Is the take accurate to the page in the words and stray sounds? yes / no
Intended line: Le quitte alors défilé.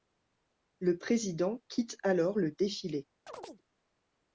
no